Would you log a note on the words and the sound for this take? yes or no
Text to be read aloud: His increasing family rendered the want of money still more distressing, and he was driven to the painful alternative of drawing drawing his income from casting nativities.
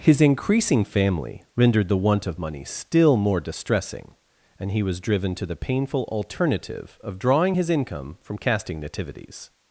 yes